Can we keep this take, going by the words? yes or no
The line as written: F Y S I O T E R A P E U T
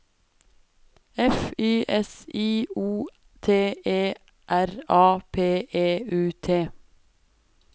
yes